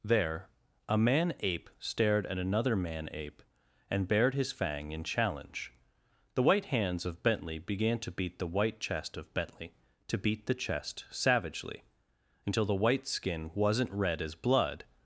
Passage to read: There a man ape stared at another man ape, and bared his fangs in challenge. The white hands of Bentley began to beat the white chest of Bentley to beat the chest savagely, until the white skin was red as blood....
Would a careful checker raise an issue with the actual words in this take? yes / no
yes